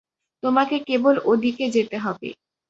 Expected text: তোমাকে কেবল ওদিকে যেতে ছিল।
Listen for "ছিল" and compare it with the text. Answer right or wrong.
wrong